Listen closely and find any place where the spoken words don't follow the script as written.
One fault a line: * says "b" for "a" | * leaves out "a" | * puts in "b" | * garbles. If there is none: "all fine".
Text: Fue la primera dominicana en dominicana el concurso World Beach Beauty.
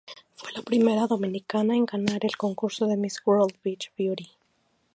* says "ganar" for "dominicana"
* puts in "de Miss"